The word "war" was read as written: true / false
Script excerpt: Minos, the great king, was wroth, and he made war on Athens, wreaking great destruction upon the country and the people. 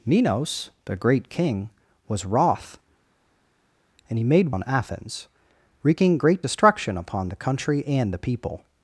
false